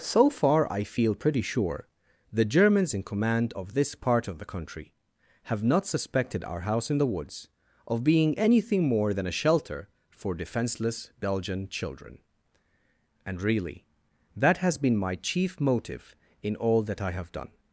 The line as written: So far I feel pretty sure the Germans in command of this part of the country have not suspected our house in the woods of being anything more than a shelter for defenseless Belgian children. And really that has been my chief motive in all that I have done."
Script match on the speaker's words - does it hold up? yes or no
yes